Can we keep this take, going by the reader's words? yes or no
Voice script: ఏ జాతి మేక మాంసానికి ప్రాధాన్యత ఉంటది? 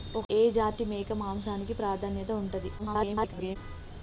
no